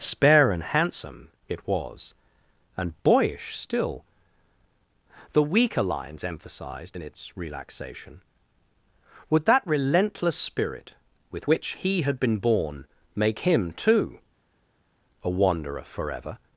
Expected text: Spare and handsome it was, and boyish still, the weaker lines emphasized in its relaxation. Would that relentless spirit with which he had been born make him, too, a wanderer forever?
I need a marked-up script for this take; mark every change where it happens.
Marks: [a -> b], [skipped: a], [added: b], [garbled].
Spare and handsome it was, and boyish still, the weaker lines emphasized in its relaxation. Would that relentless spirit with which he had been born make him, too, a wanderer forever?